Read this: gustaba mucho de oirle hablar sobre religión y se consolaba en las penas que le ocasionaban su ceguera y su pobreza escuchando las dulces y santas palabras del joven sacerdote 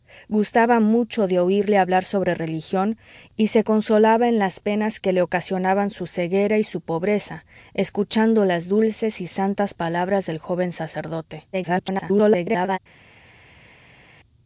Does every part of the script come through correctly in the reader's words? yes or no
no